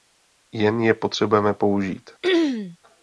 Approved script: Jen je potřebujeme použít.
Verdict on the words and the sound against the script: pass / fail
fail